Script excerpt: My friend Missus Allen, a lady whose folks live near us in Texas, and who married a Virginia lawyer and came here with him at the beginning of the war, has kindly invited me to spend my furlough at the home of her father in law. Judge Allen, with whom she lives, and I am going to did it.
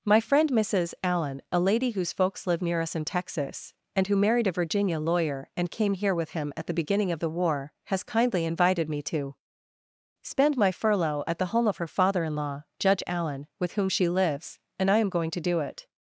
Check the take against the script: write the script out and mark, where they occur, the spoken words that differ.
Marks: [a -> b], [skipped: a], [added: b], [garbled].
My friend Missus Allen, a lady whose folks live near us in Texas, and who married a Virginia lawyer and came here with him at the beginning of the war, has kindly invited me to spend my furlough at the home of her father in law. Judge Allen, with whom she lives, and I am going to [did -> do] it.